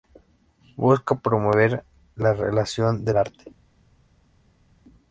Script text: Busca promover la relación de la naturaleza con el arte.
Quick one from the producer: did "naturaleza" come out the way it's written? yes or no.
no